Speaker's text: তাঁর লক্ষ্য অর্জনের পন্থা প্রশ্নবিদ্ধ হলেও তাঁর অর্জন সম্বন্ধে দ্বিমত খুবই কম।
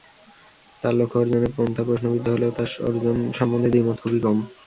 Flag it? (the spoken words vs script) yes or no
no